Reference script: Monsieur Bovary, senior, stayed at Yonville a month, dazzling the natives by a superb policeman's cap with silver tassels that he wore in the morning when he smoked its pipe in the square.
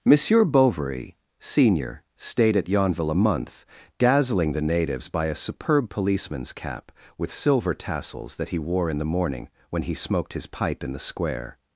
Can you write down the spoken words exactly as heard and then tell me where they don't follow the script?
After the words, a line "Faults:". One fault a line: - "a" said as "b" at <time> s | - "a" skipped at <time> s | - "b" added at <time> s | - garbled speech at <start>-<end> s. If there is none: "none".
Monsieur Bovary, senior, stayed at Yonville a month, dazzling the natives by a superb policeman's cap with silver tassels that he wore in the morning when he smoked his pipe in the square.
Faults:
- "its" said as "his" at 10.3 s